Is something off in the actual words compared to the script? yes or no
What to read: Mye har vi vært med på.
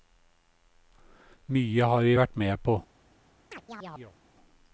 no